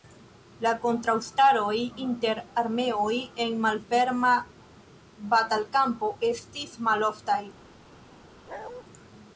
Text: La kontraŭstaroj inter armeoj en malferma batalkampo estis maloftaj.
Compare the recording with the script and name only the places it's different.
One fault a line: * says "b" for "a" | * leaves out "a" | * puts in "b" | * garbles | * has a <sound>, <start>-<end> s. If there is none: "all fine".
* has a bark, 8.5-8.8 s